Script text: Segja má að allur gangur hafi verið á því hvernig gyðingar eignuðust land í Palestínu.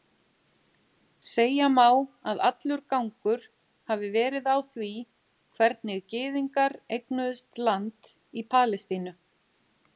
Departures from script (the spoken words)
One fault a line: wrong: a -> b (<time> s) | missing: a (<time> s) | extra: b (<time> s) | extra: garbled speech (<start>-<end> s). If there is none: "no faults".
no faults